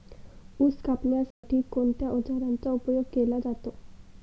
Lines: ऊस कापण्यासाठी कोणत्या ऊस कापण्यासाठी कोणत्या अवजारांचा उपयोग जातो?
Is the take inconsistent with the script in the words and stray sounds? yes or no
yes